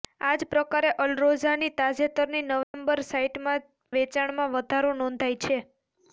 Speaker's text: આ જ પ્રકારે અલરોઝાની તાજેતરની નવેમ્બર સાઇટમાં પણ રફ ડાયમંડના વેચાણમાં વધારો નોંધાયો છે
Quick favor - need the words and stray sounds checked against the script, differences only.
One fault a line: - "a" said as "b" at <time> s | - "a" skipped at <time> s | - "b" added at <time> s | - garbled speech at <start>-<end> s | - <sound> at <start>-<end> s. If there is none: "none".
- dropout at 2.6-2.7 s
- "પણ રફ ડાયમંડના" skipped at 3.7 s